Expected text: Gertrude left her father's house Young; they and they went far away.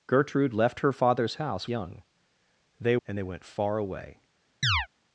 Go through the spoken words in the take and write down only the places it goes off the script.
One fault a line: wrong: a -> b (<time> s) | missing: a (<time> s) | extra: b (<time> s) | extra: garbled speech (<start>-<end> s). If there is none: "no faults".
no faults